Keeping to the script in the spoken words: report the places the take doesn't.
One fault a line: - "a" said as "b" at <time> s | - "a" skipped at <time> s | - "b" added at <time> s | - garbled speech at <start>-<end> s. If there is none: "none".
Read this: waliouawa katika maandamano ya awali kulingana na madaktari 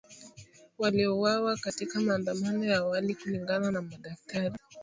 none